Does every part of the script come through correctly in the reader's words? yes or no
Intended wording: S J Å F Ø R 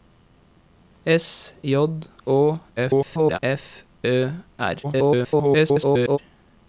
no